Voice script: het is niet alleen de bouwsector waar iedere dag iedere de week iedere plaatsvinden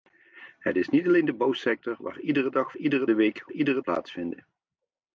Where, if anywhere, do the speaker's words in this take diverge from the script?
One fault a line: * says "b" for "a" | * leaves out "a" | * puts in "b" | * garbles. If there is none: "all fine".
all fine